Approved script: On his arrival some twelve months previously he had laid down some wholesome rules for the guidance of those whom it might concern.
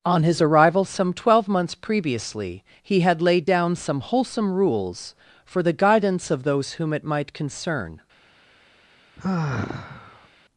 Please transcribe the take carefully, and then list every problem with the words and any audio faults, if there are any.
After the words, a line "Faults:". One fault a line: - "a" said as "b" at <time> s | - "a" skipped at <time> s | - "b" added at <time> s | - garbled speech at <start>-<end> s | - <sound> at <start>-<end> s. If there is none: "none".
On his arrival some twelve months previously he had laid down some wholesome rules for the guidance of those whom it might concern.
Faults:
- sigh at 9.2-10.3 s